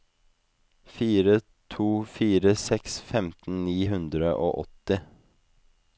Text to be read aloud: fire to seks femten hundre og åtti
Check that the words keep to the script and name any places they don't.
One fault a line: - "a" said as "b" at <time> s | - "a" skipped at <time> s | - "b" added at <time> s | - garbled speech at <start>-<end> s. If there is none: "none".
- "fire" added at 2.1 s
- "ni" added at 3.7 s